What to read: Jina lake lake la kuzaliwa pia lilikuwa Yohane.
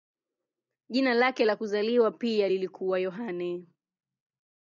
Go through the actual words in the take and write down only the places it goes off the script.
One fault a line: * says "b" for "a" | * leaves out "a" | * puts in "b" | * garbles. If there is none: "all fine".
* leaves out "lake"